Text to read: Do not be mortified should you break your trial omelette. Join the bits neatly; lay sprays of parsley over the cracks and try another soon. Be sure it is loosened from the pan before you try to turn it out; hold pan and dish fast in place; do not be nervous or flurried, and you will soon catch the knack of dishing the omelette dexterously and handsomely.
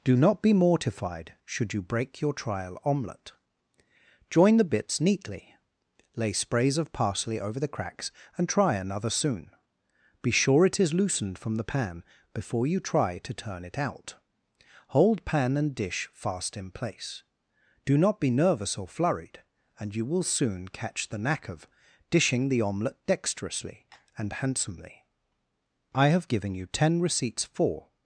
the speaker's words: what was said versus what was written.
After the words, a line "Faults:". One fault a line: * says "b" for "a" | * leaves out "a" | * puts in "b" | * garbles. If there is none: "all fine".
Do not be mortified should you break your trial omelette. Join the bits neatly; lay sprays of parsley over the cracks and try another soon. Be sure it is loosened from the pan before you try to turn it out; hold pan and dish fast in place; do not be nervous or flurried, and you will soon catch the knack of dishing the omelette dexterously and handsomely. I have given you ten receipts for
Faults:
* puts in "I have given you ten receipts for"